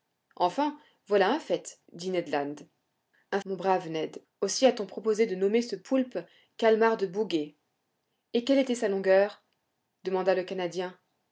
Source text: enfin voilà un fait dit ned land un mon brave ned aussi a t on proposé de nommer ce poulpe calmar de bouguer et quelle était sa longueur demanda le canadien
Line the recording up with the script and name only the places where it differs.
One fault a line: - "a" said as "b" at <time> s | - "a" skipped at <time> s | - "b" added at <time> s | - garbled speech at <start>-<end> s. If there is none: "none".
none